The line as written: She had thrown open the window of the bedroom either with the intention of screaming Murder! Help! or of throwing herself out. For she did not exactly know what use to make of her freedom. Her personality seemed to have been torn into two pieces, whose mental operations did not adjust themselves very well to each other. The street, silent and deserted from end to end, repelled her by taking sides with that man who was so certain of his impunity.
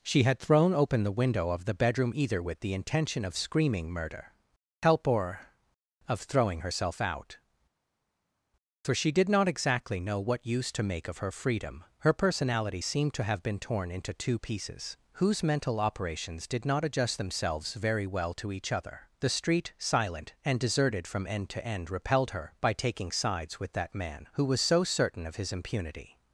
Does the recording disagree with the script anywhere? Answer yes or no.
no